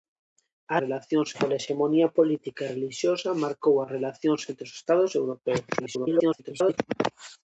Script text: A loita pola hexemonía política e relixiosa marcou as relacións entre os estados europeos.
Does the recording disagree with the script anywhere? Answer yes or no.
yes